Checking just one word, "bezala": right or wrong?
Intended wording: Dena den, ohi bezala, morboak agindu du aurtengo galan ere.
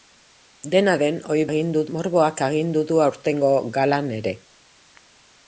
wrong